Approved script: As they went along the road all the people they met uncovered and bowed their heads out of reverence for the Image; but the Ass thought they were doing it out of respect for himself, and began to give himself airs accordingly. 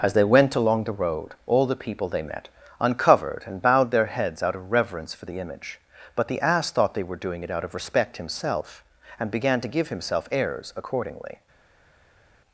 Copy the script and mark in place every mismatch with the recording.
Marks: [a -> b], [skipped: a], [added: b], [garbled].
As they went along the road all the people they met uncovered and bowed their heads out of reverence for the Image; but the Ass thought they were doing it out of respect [skipped: for] himself, and began to give himself airs accordingly.